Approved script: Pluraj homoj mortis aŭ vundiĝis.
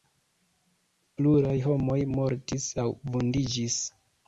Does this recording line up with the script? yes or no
yes